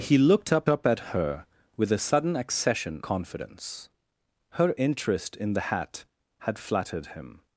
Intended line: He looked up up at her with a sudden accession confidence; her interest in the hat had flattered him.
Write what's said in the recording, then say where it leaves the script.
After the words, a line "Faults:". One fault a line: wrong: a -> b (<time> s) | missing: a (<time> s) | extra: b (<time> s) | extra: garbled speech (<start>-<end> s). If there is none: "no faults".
He looked up up at her with a sudden accession confidence; her interest in the hat had flattered him.
Faults:
no faults